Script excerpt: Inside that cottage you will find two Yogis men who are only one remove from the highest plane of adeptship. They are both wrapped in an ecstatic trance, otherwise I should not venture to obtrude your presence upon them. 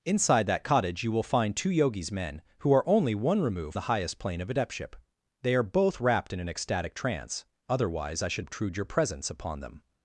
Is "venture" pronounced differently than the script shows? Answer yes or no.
yes